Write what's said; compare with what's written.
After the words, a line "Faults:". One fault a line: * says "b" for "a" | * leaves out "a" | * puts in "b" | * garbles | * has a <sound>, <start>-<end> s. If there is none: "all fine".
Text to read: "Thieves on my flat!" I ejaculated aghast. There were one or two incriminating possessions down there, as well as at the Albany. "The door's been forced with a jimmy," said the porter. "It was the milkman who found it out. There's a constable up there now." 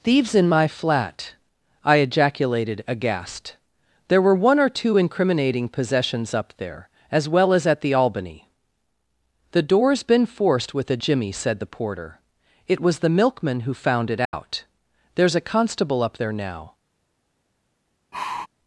"Thieves in my flat!" I ejaculated aghast. There were one or two incriminating possessions up there, as well as at the Albany. "The door's been forced with a jimmy," said the porter. "It was the milkman who found it out. There's a constable up there now."
Faults:
* says "in" for "on"
* says "up" for "down"
* has a dropout, 14.3-14.3 s
* has a sigh, 18.1-18.5 s